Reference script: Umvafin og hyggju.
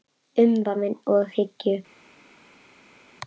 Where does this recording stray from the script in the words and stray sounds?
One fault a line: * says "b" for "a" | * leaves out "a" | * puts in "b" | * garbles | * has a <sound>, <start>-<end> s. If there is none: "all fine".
all fine